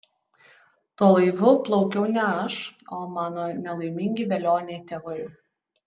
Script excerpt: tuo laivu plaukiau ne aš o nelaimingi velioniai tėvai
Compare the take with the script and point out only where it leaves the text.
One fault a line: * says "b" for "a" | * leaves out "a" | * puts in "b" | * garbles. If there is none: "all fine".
* puts in "mano"